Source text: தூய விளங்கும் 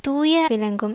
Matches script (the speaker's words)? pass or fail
pass